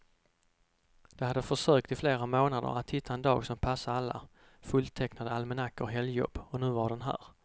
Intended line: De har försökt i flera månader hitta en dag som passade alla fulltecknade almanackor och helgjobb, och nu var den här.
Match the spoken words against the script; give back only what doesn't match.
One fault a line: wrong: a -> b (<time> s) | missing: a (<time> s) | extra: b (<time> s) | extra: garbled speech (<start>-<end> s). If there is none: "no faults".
wrong: har -> hade (1.2 s)
extra: att (2.8 s)